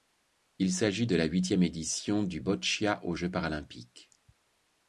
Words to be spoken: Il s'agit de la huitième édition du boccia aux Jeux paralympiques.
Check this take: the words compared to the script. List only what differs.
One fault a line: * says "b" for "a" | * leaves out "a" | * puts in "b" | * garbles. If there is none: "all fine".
all fine